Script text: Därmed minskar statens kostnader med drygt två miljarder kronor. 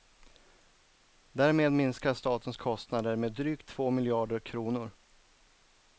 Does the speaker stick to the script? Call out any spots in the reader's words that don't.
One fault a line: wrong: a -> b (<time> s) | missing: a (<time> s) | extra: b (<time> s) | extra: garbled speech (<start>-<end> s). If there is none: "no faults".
no faults